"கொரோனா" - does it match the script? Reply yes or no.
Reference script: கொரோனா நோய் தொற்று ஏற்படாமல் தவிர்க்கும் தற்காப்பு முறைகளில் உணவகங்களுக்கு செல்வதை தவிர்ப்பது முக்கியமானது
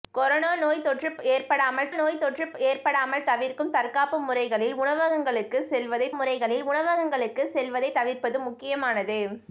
yes